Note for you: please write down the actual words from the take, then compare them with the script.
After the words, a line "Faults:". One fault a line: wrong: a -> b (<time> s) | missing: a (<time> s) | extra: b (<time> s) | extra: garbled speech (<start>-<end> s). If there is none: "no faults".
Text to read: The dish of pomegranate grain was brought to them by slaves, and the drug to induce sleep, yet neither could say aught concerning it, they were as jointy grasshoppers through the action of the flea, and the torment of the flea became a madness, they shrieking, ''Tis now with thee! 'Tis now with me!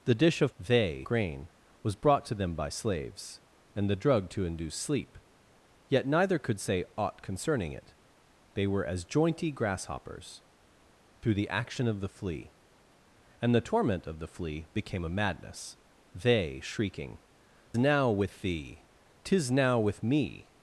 The dish of they grain was brought to them by slaves, and the drug to induce sleep, yet neither could say aught concerning it, they were as jointy grasshoppers through the action of the flea, and the torment of the flea became a madness, they shrieking, ''Now with thee! 'Tis now with me!
Faults:
wrong: pomegranate -> they (0.6 s)
missing: Tis (17.2 s)